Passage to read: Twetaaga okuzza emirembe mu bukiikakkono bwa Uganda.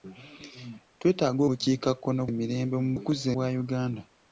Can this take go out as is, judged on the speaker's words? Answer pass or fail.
fail